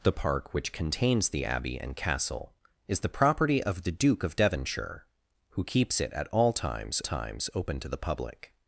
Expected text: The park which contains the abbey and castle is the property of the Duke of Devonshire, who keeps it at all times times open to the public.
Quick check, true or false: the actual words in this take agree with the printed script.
true